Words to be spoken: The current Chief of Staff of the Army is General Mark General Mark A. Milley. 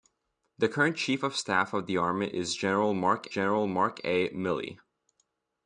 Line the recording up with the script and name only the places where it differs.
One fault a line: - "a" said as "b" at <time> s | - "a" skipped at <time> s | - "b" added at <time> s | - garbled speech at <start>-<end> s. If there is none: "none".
none